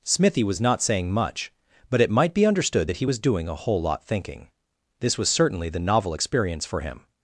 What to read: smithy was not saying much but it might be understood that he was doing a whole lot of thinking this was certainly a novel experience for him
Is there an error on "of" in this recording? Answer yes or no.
yes